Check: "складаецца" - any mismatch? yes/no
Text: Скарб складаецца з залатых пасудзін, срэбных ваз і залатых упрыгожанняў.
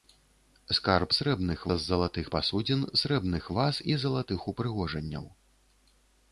yes